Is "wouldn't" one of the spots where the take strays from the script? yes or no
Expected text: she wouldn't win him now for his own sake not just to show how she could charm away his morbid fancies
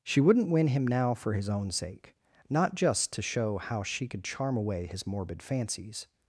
no